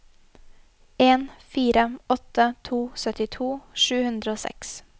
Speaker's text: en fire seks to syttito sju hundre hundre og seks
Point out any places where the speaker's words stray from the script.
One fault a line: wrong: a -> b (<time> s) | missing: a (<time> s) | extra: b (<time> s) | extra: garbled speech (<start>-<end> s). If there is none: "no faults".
wrong: seks -> åtte (2.1 s)
missing: hundre (4.3 s)